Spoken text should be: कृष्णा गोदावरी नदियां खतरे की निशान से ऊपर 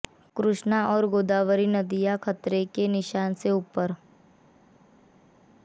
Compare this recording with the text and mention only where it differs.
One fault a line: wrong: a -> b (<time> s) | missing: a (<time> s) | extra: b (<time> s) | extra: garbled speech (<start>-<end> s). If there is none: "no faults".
extra: और (0.9 s)
wrong: की -> के (2.8 s)